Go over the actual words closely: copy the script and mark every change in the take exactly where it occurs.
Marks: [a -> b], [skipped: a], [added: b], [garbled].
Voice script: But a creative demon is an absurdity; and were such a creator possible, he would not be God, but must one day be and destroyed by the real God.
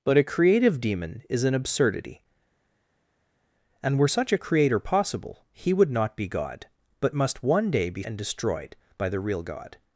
But a creative demon is an absurdity; and were such a creator possible, he would not be God, but must one day be and destroyed by the real God.